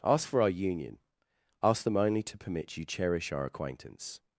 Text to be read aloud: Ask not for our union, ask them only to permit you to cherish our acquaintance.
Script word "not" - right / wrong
wrong